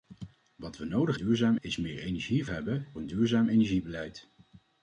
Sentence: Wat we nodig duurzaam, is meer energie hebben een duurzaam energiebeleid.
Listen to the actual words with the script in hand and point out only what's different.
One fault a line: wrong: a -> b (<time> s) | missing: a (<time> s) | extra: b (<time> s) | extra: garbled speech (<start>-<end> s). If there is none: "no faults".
no faults